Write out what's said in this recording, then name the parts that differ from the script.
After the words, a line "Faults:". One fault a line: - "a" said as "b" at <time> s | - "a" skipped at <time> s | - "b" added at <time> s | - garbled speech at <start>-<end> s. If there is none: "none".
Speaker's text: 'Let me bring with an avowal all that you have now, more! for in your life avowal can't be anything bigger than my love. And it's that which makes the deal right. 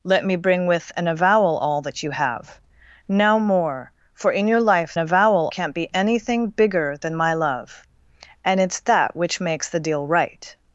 'Let me bring with an avowal all that you have now, more! for in your life avowal can't be anything bigger than my love. And it's that which makes the deal right.
Faults:
none